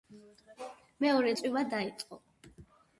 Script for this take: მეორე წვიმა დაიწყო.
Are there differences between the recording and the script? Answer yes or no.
no